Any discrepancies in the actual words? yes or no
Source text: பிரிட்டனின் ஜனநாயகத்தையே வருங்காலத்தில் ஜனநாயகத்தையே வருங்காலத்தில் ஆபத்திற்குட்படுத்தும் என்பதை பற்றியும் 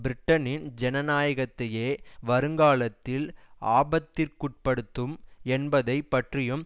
yes